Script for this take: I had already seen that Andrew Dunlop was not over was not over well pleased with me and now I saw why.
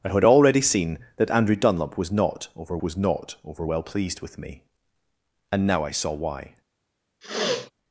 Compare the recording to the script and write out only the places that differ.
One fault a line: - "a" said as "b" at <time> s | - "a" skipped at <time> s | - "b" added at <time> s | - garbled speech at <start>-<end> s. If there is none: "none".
none